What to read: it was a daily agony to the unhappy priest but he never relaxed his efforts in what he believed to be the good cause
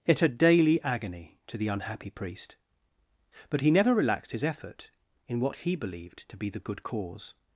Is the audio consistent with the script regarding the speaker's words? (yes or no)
no